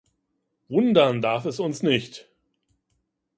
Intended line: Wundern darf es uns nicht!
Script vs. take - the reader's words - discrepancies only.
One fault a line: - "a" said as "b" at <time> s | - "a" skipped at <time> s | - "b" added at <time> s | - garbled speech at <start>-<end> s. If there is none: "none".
none